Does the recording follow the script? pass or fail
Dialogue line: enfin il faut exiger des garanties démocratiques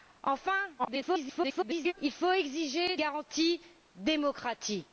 fail